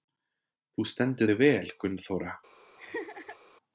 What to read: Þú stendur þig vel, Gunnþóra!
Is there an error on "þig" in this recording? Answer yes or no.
no